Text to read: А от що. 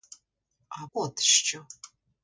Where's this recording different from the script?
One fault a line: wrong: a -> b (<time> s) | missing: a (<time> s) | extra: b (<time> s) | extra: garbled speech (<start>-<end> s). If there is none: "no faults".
no faults